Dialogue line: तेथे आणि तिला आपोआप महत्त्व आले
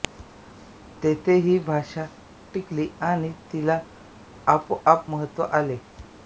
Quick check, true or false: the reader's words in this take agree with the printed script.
false